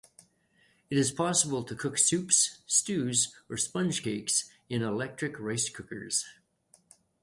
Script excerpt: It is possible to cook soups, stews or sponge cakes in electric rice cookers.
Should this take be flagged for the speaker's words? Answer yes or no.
no